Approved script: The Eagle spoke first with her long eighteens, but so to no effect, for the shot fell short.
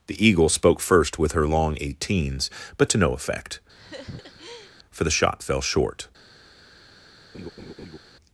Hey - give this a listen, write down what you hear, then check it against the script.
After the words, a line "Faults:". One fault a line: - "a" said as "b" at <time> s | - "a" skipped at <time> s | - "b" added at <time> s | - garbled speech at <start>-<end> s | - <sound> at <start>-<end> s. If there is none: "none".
The Eagle spoke first with her long eighteens, but to no effect, for the shot fell short.
Faults:
- "so" skipped at 2.9 s
- laugh at 3.7-4.8 s
- laugh at 7.3-8.0 s